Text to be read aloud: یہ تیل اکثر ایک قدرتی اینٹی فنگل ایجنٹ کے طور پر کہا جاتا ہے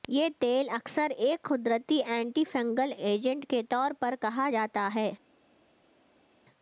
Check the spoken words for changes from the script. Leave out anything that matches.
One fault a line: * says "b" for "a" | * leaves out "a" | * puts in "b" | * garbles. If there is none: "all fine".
all fine